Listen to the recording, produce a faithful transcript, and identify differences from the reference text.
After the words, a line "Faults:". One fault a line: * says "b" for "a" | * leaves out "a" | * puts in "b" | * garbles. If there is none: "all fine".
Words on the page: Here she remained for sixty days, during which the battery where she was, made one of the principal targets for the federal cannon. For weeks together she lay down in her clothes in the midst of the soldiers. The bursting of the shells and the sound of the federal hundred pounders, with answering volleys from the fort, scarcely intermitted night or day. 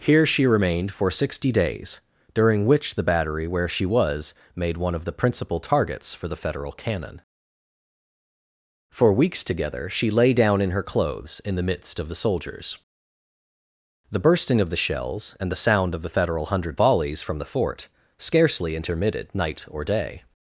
Here she remained for sixty days, during which the battery where she was, made one of the principal targets for the federal cannon. For weeks together she lay down in her clothes in the midst of the soldiers. The bursting of the shells and the sound of the federal hundred volleys from the fort, scarcely intermitted night or day.
Faults:
* leaves out "pounders with answering"